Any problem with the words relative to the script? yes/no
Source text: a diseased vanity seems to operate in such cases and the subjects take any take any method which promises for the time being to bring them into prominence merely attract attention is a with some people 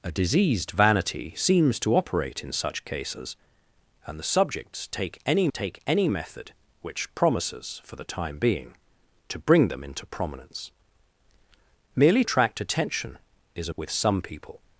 no